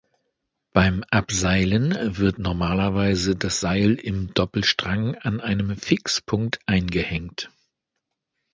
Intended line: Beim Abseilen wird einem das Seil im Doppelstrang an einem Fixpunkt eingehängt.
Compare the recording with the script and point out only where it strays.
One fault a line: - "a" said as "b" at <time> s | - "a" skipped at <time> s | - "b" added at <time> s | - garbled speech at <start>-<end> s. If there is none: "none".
- "einem" said as "normalerweise" at 2.4 s